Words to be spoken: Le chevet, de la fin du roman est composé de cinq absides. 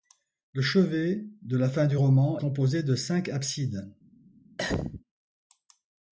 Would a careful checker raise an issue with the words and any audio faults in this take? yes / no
yes